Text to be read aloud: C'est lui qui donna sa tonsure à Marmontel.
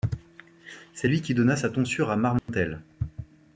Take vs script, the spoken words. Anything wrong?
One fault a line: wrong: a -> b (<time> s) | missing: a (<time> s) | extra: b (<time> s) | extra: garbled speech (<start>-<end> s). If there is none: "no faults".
no faults